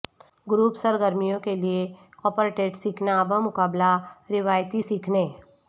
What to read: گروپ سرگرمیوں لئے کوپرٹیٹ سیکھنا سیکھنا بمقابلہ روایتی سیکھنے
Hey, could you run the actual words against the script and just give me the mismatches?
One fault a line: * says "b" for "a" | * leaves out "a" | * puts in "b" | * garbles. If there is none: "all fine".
* puts in "کے"
* leaves out "سیکھنا"